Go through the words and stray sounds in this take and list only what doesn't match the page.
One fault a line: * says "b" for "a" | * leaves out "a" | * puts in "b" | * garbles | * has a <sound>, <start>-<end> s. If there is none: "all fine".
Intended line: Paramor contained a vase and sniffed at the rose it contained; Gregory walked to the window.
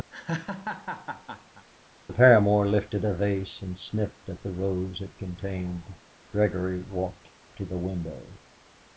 * has a laugh, 0.1-1.7 s
* says "lifted" for "contained"